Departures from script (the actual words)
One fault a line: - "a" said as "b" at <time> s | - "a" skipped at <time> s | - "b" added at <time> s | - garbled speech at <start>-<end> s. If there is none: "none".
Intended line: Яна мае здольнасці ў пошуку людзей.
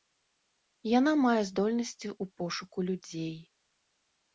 none